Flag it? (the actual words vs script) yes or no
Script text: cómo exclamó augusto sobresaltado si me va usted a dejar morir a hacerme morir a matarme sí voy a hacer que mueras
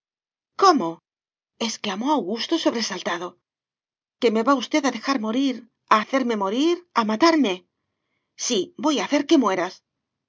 yes